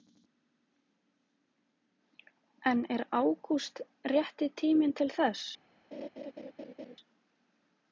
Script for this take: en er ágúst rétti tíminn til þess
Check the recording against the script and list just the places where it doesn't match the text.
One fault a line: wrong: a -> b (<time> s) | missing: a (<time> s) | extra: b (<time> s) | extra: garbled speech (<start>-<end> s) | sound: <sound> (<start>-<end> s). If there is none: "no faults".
sound: laugh (5.9-7.0 s)